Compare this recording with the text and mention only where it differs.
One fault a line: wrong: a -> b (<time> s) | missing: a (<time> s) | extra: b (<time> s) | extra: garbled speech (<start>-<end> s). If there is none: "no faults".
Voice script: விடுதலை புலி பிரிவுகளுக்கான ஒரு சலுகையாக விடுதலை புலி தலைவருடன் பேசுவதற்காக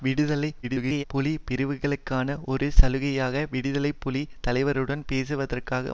extra: garbled speech (0.6-1.0 s)